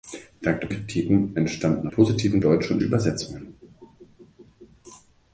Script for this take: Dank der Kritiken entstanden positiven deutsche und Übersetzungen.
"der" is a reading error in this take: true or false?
false